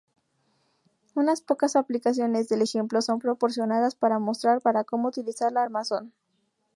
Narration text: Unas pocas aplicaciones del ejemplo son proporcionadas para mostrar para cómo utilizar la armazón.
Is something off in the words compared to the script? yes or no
no